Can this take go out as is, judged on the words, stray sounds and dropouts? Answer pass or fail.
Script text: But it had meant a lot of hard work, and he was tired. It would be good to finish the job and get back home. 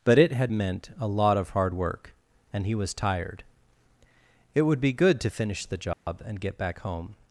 fail